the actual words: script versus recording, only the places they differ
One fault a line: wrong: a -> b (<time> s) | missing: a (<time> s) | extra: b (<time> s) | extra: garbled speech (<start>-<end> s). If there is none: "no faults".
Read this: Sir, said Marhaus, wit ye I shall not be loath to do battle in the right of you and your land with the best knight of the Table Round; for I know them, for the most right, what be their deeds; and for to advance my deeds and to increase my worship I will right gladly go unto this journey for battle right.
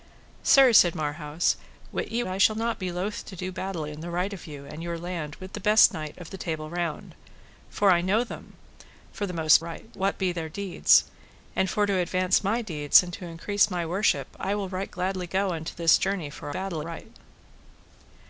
no faults